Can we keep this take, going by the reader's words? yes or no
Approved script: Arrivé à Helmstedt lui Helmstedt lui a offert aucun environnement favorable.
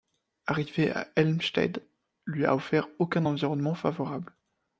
no